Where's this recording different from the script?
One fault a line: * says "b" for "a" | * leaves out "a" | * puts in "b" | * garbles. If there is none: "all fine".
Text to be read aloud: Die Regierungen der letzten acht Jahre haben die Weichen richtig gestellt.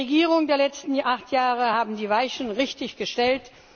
all fine